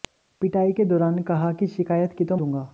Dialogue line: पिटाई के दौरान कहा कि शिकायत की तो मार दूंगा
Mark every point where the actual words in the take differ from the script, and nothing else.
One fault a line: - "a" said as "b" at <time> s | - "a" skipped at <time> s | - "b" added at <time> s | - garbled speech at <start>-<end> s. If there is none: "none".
- "मार" skipped at 2.4 s